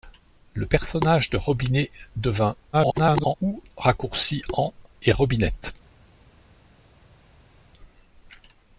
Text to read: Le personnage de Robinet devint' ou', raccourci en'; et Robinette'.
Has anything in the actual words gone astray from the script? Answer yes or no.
yes